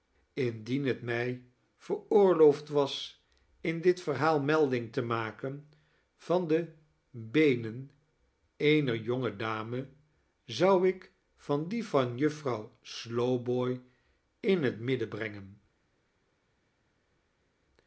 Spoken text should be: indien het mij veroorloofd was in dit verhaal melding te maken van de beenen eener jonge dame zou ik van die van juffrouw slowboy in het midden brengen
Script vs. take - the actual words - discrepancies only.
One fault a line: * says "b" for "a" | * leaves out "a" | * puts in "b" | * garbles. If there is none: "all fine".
all fine